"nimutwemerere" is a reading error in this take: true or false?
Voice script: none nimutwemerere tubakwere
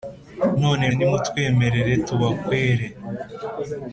false